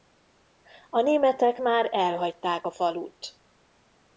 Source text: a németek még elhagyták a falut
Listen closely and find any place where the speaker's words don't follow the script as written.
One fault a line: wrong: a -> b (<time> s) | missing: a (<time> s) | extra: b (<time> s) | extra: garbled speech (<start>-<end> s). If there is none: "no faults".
wrong: még -> már (1.6 s)